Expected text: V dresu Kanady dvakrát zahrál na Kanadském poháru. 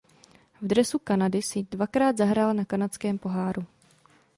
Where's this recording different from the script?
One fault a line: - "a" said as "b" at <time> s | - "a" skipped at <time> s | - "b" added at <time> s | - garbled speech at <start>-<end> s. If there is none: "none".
- "si" added at 1.4 s